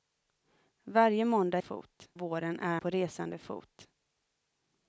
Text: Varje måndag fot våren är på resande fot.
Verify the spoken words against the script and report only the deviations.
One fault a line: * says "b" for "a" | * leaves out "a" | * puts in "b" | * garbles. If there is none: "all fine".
all fine